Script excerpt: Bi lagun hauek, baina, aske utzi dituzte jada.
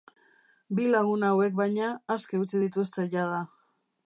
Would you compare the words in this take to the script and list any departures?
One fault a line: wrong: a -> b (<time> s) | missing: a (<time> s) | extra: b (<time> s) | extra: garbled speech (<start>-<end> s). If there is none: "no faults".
no faults